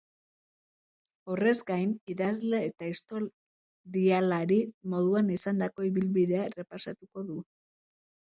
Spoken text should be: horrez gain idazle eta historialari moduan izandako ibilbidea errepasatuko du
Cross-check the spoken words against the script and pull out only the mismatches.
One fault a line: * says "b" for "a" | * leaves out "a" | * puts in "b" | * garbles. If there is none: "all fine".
all fine